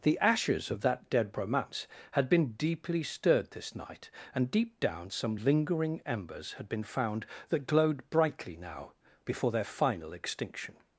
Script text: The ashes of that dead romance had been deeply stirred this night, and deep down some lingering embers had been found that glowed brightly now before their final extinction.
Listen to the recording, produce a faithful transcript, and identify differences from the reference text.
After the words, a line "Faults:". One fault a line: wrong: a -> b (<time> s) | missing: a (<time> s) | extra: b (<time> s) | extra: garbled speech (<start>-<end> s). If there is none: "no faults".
The ashes of that dead romance had been deeply stirred this night, and deep down some lingering embers had been found that glowed brightly now before their final extinction.
Faults:
no faults